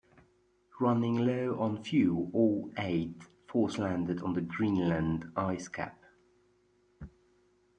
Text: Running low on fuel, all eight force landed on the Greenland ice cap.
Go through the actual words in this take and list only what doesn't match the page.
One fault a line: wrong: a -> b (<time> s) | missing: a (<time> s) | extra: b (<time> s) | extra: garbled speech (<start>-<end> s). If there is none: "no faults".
no faults